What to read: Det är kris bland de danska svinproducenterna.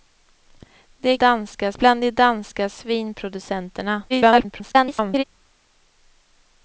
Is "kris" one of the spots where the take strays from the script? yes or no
yes